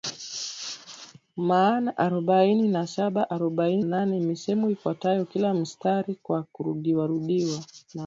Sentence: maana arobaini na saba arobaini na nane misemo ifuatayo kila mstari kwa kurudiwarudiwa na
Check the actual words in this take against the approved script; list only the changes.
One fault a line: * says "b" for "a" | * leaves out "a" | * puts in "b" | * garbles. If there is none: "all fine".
* leaves out "na"